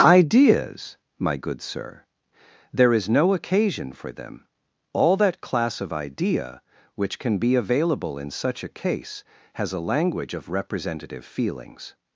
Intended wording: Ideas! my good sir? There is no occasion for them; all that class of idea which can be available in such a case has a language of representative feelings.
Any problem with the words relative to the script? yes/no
no